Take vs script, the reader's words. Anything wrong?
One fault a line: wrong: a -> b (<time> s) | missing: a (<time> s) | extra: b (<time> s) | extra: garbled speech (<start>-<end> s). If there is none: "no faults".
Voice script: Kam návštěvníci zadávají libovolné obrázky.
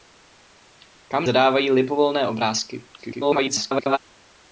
missing: návštěvníci (1.3 s)
extra: garbled speech (3.0-4.0 s)